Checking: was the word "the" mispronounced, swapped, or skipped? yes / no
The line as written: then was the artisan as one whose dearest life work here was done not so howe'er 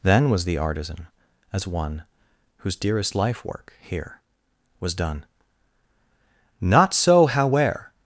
no